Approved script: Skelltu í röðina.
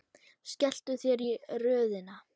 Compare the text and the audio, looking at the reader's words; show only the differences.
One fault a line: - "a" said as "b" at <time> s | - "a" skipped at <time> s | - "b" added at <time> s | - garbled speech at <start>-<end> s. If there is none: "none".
- "þér" added at 1.0 s